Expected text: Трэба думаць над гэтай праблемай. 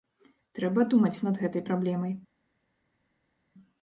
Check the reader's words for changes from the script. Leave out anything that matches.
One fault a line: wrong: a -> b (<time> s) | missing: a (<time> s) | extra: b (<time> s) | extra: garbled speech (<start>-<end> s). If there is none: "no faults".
no faults